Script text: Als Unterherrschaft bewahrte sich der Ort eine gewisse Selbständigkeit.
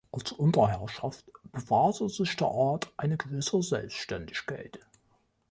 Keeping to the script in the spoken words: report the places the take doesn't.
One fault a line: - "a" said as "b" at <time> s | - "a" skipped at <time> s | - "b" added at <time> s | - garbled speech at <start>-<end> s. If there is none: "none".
none